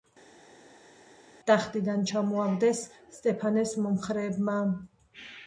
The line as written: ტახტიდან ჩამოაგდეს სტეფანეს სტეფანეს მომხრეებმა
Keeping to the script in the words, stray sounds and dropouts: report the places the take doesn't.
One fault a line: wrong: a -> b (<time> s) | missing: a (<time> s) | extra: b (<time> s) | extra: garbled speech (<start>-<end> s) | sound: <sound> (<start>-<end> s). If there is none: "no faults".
missing: სტეფანეს (3.7 s)